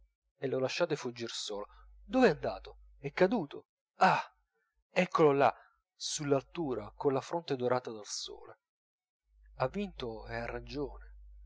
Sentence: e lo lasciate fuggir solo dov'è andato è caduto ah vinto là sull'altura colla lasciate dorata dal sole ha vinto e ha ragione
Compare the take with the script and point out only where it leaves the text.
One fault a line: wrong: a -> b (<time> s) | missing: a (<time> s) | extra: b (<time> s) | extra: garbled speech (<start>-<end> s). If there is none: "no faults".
wrong: vinto -> eccolo (4.9 s)
wrong: lasciate -> fronte (7.2 s)